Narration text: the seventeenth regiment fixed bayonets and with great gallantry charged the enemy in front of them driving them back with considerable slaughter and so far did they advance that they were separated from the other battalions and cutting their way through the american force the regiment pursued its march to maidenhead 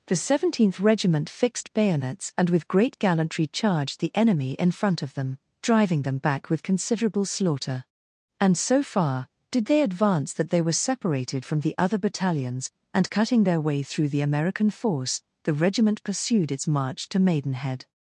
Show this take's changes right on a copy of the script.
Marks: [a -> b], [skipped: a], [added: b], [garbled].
the seventeenth regiment fixed bayonets and with great gallantry charged the enemy in front of them driving them back with considerable slaughter and so far did they advance that they were separated from the other battalions and cutting their way through the american force the regiment pursued its march to maidenhead